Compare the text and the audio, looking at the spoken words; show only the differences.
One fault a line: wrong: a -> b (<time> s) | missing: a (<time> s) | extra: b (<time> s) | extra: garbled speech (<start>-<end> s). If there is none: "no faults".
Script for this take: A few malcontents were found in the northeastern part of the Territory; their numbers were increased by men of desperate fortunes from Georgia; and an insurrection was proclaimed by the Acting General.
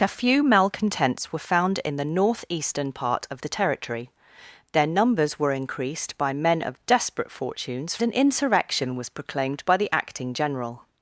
missing: from Georgia and (8.0 s)